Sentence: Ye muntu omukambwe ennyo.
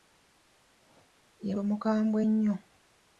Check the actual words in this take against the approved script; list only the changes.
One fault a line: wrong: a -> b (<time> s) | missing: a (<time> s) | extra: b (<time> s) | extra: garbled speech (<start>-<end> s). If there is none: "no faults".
missing: muntu (1.5 s)